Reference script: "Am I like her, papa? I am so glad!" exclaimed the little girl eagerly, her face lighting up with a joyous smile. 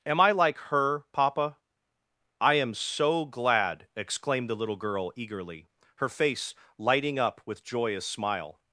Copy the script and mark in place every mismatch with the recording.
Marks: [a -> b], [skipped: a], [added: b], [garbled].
"Am I like her, papa? I am so glad!" exclaimed the little girl eagerly, her face lighting up with [skipped: a] joyous smile.